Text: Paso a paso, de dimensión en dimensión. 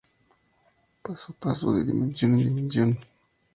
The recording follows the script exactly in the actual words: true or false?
true